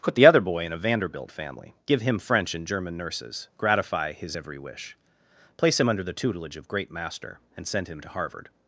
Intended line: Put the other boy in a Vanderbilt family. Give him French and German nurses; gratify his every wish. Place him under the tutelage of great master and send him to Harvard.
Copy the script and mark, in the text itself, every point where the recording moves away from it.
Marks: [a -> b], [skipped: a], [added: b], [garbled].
Put the other boy in a Vanderbilt family. Give him French and German nurses; gratify his every wish. Place him under the tutelage of great master and send him to Harvard.